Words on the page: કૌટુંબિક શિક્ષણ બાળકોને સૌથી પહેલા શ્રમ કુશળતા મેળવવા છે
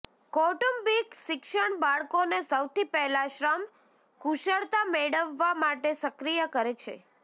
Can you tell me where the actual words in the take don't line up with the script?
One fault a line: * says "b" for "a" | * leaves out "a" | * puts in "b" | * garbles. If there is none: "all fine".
* puts in "માટે સક્રિય કરે"